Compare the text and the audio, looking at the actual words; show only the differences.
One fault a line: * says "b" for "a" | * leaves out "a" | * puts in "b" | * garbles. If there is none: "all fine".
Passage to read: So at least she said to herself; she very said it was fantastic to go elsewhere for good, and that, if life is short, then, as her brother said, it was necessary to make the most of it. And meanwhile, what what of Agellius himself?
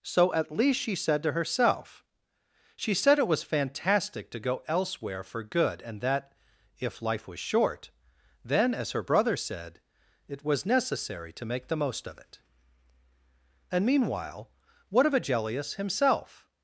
* leaves out "very"
* says "was" for "is"
* leaves out "what"